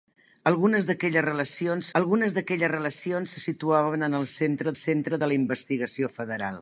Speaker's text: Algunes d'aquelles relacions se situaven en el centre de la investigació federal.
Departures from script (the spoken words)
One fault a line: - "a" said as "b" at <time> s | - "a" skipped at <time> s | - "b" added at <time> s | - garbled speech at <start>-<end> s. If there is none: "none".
- "algunes d'aquelles relacions" added at 2.0 s
- "centre" added at 4.8 s